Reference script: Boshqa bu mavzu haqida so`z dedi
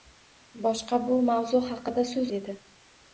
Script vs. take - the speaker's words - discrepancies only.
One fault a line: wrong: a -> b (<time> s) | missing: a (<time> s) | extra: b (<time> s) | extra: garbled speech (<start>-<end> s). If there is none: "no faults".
no faults